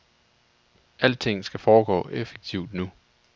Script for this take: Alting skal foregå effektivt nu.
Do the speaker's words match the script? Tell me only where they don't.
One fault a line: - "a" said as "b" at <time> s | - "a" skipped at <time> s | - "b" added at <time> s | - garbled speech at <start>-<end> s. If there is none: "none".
none